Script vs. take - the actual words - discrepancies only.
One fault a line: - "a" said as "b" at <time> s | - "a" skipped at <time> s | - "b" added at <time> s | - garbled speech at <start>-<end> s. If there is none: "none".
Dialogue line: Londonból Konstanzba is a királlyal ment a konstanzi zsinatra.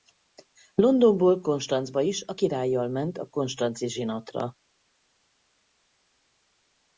none